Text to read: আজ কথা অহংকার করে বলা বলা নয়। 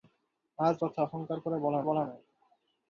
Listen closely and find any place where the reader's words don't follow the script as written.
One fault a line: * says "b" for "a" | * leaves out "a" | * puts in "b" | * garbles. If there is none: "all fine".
all fine